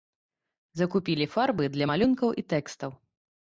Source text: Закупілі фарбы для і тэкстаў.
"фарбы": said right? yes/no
yes